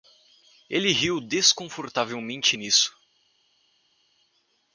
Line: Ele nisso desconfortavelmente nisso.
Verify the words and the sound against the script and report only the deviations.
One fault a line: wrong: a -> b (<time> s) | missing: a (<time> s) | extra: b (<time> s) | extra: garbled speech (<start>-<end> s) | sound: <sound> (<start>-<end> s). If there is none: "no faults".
wrong: nisso -> riu (0.9 s)